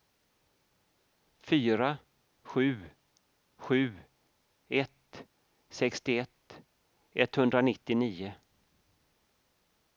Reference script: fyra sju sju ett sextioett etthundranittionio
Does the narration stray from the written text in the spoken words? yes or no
no